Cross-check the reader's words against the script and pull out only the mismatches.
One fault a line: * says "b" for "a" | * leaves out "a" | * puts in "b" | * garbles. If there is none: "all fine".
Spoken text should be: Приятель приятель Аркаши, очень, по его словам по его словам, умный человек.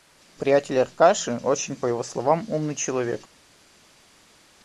* leaves out "приятель"
* leaves out "по его словам"